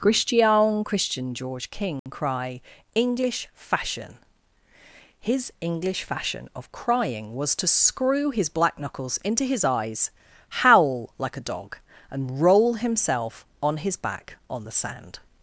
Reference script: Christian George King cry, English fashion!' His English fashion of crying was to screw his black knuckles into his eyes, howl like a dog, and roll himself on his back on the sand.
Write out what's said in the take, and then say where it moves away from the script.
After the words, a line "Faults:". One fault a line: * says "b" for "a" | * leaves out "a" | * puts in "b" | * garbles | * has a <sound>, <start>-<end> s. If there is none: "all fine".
Christian christian George King cry, English fashion!' His English fashion of crying was to screw his black knuckles into his eyes, howl like a dog, and roll himself on his back on the sand.
Faults:
* puts in "christian"
* has a dropout, 2.0-2.1 s